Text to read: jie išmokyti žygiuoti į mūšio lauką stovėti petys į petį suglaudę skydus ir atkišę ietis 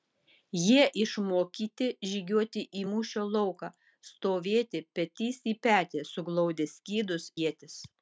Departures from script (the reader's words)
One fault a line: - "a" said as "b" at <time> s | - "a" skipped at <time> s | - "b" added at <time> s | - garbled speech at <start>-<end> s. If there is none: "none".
- "ir atkišę" skipped at 7.3 s